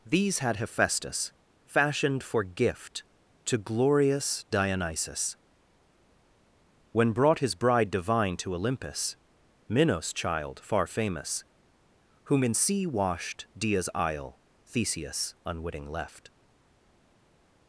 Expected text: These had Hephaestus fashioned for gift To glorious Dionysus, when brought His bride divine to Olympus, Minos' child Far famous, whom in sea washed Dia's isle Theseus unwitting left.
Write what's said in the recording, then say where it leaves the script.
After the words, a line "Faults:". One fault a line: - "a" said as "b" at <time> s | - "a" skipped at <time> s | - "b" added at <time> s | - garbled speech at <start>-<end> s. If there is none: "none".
These had Hephaestus fashioned for gift To glorious Dionysus, when brought His bride divine to Olympus, Minos' child Far famous, whom in sea washed Dia's isle Theseus unwitting left.
Faults:
none